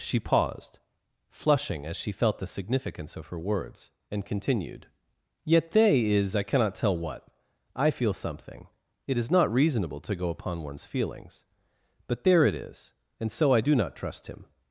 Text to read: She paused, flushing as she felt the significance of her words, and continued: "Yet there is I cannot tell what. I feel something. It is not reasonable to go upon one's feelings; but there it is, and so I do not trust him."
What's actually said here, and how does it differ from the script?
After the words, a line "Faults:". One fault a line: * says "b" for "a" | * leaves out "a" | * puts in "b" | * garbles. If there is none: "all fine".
She paused, flushing as she felt the significance of her words, and continued: "Yet they is I cannot tell what. I feel something. It is not reasonable to go upon one's feelings; but there it is, and so I do not trust him."
Faults:
* says "they" for "there"